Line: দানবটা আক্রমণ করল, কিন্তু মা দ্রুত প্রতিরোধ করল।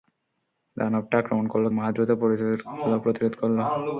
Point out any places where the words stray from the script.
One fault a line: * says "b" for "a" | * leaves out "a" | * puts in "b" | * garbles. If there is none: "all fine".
* leaves out "কিন্তু"